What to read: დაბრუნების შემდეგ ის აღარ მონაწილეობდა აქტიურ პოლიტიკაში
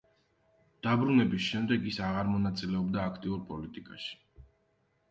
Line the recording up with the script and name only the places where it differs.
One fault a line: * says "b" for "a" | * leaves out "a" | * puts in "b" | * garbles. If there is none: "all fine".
all fine